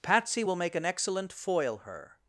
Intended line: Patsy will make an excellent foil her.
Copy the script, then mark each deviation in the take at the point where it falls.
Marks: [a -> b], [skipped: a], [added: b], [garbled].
Patsy will make an excellent foil her.